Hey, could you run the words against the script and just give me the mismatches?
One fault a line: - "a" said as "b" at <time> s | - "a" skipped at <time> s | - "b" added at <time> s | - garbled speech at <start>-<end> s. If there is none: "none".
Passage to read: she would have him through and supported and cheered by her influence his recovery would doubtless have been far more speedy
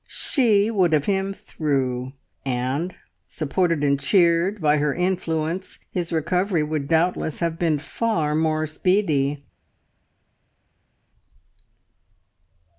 none